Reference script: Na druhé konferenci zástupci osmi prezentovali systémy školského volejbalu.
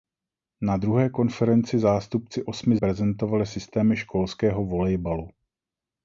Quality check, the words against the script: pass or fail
pass